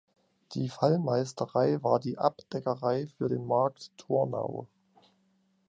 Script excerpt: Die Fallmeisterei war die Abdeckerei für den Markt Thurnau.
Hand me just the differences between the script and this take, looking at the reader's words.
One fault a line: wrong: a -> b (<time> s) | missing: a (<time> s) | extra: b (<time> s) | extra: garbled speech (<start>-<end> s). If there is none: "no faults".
no faults